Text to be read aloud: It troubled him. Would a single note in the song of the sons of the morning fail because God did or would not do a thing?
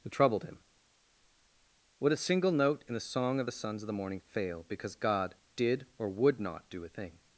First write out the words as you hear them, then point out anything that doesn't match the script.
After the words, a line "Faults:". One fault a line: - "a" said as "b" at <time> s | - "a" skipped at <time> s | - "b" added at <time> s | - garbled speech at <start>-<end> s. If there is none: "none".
It troubled him. Would a single note in the song of the sons of the morning fail because God did or would not do a thing?
Faults:
none